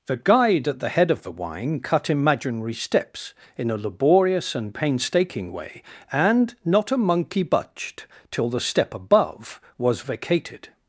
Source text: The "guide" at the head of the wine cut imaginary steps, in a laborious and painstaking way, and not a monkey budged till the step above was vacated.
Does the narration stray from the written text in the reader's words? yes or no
no